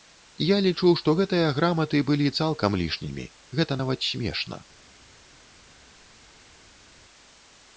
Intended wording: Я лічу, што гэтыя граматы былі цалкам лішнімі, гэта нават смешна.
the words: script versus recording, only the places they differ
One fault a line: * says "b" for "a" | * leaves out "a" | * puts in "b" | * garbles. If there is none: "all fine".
all fine